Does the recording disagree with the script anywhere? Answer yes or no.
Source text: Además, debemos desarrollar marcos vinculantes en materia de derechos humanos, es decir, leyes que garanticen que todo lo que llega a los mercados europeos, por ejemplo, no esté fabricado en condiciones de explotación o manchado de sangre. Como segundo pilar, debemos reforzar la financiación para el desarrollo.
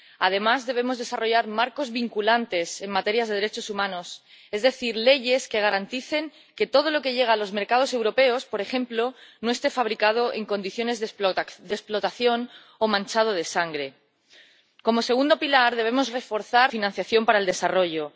yes